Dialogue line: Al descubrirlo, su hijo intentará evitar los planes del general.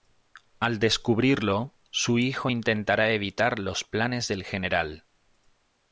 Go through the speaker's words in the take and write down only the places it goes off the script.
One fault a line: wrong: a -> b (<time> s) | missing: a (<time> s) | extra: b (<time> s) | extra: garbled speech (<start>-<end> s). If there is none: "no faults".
no faults